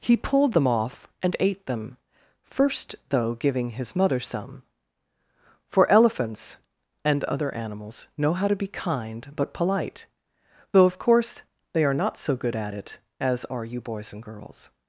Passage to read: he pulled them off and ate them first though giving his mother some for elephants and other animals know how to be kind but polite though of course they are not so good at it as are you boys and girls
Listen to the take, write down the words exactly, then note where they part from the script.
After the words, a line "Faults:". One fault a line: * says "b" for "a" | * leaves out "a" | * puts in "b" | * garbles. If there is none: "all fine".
he pulled them off and ate them first though giving his mother some for elephants and other animals know how to be kind but polite though of course they are not so good at it as are you boys and girls
Faults:
all fine